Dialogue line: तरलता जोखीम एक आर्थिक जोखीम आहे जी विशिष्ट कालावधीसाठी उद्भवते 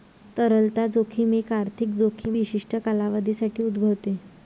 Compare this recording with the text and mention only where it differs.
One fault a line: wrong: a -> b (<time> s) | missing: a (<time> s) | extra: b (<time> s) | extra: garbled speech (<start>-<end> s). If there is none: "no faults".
missing: आहे जी (2.4 s)